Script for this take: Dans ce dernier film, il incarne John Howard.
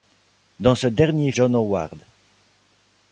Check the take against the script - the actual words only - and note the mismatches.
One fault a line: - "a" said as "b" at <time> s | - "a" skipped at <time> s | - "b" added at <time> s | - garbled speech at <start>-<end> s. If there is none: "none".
- "film il incarne" skipped at 1.3 s